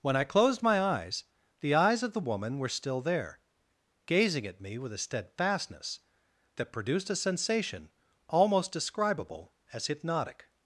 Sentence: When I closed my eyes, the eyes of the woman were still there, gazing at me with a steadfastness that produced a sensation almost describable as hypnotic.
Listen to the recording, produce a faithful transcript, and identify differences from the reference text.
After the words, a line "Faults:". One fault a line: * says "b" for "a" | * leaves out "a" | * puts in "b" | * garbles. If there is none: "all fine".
When I closed my eyes, the eyes of the woman were still there, gazing at me with a steadfastness that produced a sensation almost describable as hypnotic.
Faults:
all fine